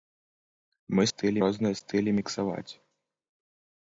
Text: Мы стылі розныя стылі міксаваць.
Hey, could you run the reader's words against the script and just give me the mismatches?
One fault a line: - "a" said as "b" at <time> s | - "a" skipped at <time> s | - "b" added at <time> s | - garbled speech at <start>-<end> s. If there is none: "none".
none